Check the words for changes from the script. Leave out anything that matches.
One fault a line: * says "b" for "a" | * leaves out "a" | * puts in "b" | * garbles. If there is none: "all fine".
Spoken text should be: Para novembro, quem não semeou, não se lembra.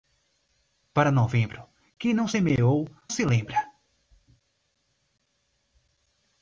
* leaves out "não"